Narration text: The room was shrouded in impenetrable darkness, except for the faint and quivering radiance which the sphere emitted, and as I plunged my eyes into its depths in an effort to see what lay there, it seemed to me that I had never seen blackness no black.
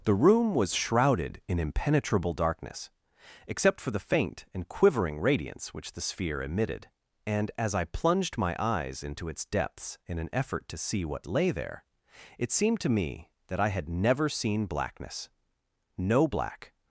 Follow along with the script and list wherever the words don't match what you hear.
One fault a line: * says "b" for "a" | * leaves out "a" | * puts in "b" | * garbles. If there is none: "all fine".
all fine